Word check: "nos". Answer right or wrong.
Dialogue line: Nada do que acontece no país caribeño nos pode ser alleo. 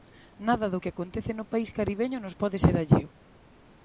right